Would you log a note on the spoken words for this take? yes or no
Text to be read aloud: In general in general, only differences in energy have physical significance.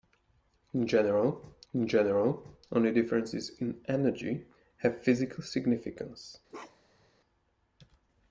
no